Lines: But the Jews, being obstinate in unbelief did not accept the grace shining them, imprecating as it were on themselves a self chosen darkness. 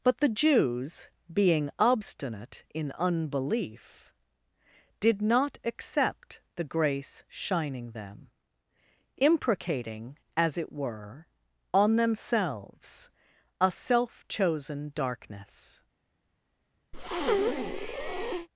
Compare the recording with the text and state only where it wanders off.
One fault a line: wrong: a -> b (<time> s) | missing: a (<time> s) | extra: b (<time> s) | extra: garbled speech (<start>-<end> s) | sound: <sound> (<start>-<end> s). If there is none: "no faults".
sound: breath (16.9-18.5 s)